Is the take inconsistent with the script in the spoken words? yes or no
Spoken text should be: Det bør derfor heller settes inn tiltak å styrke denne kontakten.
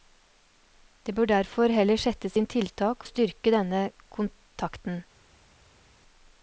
no